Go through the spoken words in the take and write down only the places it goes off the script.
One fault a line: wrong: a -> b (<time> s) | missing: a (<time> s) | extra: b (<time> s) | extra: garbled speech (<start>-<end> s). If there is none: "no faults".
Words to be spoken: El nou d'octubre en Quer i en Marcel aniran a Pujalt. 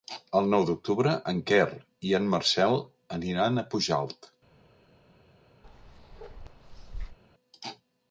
no faults